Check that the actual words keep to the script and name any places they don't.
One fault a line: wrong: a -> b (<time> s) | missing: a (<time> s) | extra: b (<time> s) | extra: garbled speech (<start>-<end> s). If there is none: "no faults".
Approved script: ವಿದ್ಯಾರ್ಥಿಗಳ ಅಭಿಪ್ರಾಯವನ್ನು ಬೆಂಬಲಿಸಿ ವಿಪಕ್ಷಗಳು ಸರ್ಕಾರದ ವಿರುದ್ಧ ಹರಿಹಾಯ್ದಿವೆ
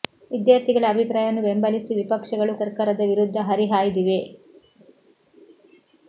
no faults